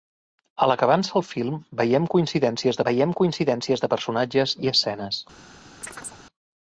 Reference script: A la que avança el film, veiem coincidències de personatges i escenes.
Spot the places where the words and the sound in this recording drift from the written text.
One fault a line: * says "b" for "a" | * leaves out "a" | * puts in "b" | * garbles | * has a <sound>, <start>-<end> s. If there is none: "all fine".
* puts in "veiem coincidències"
* has a chirp, 5.8-6.2 s